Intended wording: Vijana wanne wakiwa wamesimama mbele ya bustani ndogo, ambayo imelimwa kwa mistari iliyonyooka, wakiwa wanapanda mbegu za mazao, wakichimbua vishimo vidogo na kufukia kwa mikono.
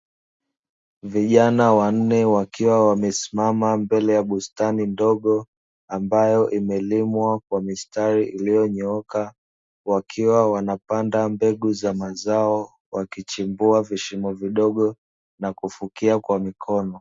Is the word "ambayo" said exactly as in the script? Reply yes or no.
yes